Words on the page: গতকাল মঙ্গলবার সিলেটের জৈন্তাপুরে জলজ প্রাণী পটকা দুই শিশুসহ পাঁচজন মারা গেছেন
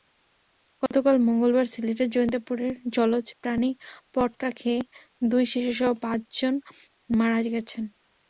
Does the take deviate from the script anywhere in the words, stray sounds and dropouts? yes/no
yes